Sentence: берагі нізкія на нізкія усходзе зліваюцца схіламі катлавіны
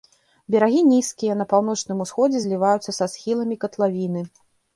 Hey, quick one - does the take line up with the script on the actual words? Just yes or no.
no